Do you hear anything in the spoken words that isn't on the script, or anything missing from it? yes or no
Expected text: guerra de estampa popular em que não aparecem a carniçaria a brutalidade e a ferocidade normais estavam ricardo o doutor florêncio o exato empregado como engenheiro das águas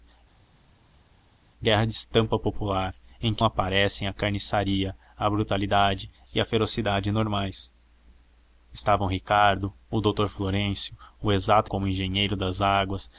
yes